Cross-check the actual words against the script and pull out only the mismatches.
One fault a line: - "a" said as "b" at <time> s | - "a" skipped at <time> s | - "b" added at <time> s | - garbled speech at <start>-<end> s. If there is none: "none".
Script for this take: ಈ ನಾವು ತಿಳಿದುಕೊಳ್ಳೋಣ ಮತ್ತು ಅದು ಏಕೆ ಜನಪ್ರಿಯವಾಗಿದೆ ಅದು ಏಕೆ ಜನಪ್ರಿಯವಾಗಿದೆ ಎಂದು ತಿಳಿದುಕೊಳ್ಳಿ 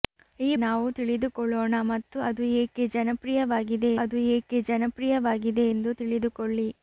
none